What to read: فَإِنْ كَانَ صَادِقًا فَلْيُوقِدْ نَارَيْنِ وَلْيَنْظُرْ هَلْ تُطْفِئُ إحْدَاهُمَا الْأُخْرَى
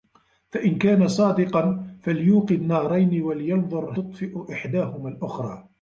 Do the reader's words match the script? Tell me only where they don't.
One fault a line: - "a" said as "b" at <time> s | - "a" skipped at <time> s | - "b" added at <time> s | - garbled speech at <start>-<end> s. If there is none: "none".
- "هَلْ" skipped at 3.9 s